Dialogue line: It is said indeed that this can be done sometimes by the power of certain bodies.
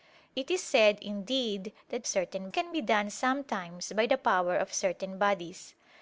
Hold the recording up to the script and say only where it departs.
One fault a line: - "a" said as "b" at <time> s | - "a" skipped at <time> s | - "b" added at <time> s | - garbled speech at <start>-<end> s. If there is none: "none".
- "this" said as "certain" at 2.1 s